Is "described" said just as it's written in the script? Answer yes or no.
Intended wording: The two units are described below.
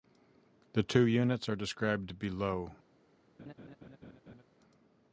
yes